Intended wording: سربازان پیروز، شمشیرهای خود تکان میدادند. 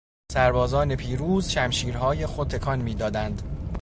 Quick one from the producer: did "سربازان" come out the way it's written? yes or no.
yes